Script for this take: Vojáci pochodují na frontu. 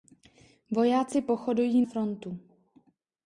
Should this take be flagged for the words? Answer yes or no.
yes